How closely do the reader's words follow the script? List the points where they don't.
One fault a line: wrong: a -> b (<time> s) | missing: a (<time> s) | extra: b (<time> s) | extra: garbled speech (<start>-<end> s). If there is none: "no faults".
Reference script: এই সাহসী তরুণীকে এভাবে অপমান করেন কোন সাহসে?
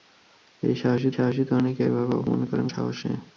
extra: সাহসী (1.1 s)
missing: কোন (2.7 s)